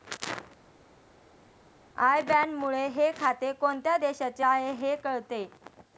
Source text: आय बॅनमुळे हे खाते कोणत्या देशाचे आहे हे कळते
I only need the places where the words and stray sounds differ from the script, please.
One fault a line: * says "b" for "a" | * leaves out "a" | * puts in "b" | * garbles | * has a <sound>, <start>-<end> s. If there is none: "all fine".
all fine